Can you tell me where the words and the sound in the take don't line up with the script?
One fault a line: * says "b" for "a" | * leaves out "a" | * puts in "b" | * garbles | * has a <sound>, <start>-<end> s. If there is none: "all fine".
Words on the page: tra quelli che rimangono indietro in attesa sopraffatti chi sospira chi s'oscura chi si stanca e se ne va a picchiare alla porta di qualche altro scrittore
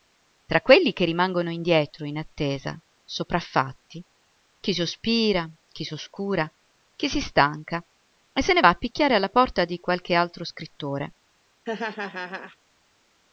* has a laugh, 11.6-12.6 s